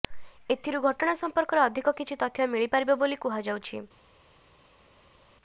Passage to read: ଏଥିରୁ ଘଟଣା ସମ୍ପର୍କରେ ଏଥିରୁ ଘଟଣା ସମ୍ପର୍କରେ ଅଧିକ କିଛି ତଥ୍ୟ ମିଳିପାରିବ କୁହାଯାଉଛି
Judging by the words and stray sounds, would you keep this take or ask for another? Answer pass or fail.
fail